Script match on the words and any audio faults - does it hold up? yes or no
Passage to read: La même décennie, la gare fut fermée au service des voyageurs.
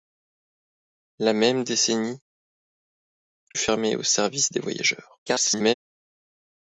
no